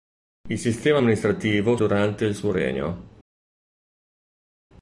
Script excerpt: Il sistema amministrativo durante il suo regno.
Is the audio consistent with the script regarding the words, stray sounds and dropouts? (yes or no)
yes